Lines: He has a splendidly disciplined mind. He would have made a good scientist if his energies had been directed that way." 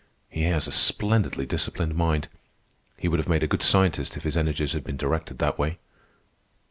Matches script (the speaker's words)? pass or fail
pass